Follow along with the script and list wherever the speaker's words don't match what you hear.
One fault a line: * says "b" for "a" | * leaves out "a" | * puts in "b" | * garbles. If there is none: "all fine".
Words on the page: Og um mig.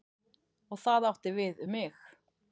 * puts in "það átti við"